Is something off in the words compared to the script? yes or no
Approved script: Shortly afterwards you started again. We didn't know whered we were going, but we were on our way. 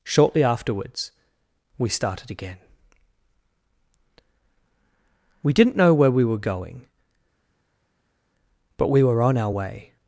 yes